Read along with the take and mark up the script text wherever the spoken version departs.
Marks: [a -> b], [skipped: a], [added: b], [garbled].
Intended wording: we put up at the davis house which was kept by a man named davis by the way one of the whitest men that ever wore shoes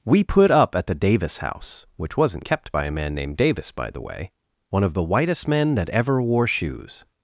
we put up at the davis house which [was -> wasn't] kept by a man named davis by the way one of the whitest men that ever wore shoes